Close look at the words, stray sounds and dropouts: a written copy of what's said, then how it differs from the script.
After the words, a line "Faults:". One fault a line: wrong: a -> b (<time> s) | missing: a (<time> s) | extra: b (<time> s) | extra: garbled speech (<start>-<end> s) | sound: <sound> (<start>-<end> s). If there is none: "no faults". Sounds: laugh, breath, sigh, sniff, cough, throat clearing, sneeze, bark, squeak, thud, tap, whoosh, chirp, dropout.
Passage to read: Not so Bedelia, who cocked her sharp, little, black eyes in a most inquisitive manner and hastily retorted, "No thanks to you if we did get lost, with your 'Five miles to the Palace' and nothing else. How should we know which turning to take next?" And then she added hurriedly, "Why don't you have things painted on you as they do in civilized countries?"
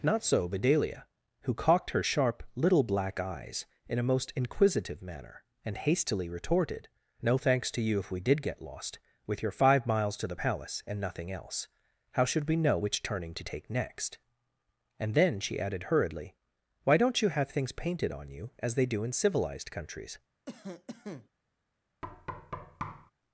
Not so Bedelia, who cocked her sharp, little, black eyes in a most inquisitive manner and hastily retorted, "No thanks to you if we did get lost, with your 'Five miles to the Palace' and nothing else. How should we know which turning to take next?" And then she added hurriedly, "Why don't you have things painted on you as they do in civilized countries?"
Faults:
sound: cough (20.5-21.3 s)
sound: thud (22.0-23.1 s)